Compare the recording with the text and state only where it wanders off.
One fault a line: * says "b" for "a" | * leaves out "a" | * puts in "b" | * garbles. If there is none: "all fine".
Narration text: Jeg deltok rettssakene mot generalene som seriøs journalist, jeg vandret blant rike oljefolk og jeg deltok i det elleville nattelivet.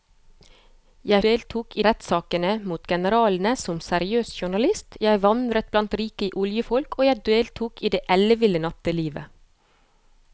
all fine